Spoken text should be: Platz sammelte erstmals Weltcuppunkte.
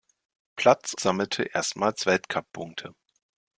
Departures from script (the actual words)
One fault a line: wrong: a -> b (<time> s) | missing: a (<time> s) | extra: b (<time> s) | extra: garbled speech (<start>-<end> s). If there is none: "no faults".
no faults